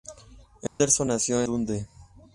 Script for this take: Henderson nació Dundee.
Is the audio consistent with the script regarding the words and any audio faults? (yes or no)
no